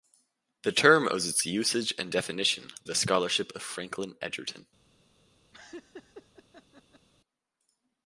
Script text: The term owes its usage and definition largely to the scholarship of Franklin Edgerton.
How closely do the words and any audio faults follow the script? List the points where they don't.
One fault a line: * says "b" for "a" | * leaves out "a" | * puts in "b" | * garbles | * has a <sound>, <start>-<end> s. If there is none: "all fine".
* leaves out "largely to"
* has a laugh, 5.5-7.1 s